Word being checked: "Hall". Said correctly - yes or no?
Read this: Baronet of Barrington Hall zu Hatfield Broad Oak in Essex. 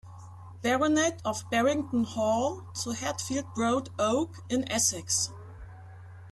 yes